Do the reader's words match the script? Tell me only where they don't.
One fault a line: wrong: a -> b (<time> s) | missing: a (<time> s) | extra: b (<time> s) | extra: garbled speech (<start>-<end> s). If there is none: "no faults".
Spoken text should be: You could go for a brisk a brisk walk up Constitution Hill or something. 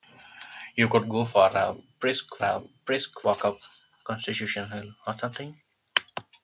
no faults